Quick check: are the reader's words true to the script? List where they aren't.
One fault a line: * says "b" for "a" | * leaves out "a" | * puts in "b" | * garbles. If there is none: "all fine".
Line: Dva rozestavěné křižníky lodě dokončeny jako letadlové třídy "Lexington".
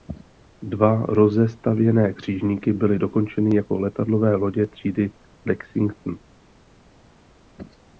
* says "byly" for "lodě"
* puts in "lodě"